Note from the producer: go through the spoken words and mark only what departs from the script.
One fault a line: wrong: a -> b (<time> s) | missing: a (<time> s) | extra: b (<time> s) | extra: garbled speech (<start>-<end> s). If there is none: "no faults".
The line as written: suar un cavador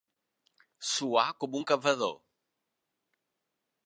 extra: com (1.4 s)